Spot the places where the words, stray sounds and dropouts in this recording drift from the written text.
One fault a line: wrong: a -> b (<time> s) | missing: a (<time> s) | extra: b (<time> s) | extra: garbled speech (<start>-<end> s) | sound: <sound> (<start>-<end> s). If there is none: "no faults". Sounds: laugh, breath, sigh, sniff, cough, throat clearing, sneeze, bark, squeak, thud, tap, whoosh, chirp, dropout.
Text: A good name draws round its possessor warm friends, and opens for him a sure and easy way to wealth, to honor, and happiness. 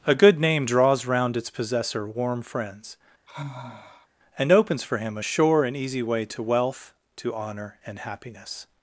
sound: sigh (3.3-4.1 s)